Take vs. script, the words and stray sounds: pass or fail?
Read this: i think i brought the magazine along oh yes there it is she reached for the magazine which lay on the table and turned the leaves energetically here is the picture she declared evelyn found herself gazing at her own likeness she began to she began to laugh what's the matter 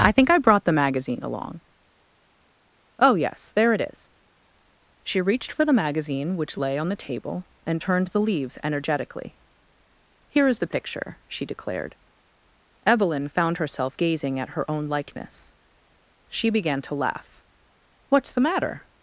fail